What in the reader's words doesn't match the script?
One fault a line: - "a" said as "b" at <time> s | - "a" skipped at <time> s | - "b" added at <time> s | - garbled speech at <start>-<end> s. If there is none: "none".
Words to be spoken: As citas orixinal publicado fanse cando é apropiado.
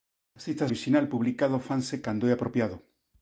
none